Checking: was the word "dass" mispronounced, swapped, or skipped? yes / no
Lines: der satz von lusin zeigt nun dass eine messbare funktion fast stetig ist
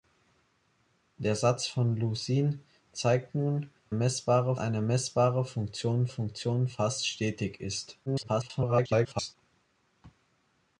yes